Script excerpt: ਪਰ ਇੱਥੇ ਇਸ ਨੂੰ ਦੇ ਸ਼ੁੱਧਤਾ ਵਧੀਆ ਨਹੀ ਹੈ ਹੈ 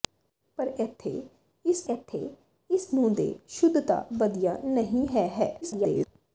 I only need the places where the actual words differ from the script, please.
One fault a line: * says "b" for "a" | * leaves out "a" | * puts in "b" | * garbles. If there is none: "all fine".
* puts in "ਇੱਥੇ ਇਸ"
* garbles